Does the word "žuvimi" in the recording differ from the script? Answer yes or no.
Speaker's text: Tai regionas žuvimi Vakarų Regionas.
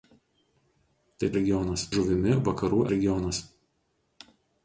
no